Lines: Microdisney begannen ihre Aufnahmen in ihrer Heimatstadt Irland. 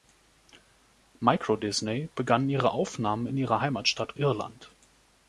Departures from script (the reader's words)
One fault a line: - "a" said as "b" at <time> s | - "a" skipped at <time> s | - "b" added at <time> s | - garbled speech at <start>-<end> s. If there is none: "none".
none